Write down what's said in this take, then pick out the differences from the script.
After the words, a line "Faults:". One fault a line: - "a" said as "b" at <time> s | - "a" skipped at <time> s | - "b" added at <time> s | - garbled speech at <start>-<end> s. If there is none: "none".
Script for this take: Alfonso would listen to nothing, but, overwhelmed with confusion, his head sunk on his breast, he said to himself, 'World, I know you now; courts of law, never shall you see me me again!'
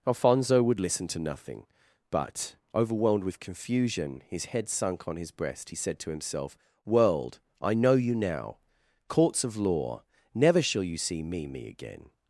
Alfonso would listen to nothing, but, overwhelmed with confusion, his head sunk on his breast, he said to himself, 'World, I know you now; courts of law, never shall you see me me again!'
Faults:
none